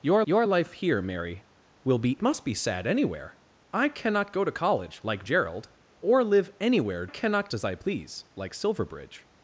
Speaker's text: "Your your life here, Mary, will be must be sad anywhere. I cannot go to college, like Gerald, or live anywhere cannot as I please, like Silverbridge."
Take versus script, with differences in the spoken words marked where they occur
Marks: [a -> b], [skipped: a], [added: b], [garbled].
"Your your life here, Mary, will be must be sad anywhere. I cannot go to college, like Gerald, or live anywhere cannot as I please, like Silverbridge."